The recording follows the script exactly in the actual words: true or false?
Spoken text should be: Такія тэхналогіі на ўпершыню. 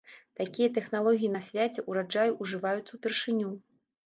false